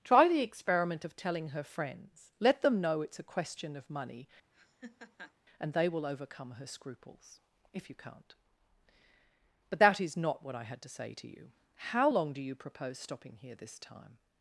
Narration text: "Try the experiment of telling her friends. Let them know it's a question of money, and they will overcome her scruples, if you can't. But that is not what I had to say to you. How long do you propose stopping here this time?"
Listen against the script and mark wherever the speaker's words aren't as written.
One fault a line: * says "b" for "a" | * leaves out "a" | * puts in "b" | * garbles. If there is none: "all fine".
all fine